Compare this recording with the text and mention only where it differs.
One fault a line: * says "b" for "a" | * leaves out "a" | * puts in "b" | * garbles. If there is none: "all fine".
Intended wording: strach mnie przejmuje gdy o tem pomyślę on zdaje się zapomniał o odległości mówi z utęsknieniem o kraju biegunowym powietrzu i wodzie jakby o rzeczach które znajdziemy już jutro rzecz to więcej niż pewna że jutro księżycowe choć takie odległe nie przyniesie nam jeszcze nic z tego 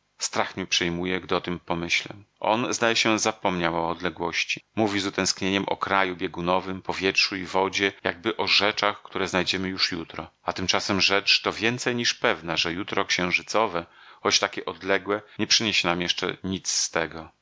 * puts in "a tymczasem"